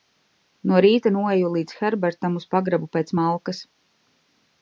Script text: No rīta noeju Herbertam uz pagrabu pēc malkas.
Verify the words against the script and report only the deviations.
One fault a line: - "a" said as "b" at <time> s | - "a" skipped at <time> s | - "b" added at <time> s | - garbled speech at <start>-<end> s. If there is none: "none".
- "līdz" added at 1.6 s